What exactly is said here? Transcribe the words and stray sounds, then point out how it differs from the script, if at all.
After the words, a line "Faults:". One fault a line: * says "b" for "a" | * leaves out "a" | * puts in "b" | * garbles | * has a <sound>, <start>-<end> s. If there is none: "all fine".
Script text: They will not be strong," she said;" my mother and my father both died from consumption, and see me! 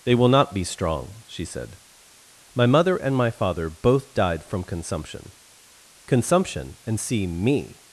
They will not be strong," she said;" my mother and my father both died from consumption consumption, and see me!
Faults:
* puts in "consumption"